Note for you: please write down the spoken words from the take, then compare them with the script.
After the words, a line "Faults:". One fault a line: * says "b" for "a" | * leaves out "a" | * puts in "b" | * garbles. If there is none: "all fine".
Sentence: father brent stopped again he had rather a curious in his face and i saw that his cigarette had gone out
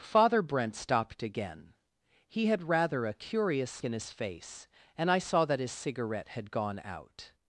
father brent stopped again he had rather a curious in his face and i saw that his cigarette had gone out
Faults:
all fine